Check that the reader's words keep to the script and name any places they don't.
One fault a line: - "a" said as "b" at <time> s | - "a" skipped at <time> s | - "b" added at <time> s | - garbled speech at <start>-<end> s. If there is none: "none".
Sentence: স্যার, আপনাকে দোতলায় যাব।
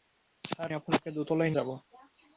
none